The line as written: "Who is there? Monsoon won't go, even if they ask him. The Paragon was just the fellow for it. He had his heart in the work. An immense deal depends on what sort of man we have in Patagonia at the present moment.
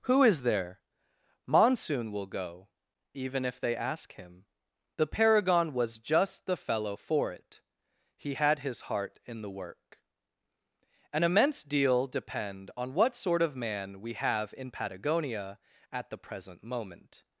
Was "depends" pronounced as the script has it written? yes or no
no